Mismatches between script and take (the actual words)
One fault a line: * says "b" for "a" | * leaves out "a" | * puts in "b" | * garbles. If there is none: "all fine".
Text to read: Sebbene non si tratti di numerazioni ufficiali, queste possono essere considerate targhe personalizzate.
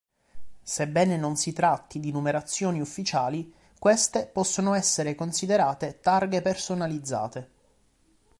all fine